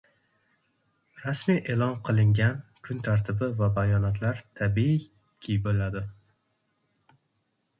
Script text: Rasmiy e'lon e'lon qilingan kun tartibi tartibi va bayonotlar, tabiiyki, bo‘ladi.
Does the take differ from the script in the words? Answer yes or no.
yes